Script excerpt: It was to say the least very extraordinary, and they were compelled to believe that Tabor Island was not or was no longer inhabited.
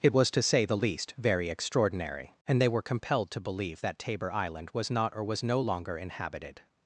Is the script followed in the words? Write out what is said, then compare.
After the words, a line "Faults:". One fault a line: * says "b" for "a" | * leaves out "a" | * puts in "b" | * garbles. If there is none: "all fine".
It was to say the least very extraordinary, and they were compelled to believe that Tabor Island was not or was no longer inhabited.
Faults:
all fine